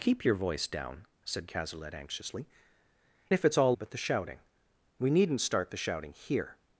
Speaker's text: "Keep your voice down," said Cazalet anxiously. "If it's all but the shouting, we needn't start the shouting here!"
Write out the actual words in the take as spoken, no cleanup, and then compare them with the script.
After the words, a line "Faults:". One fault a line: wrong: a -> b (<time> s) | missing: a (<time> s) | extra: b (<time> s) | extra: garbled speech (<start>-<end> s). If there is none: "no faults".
"Keep your voice down," said Cazalet anxiously. "If it's all but the shouting, we needn't start the shouting here!"
Faults:
no faults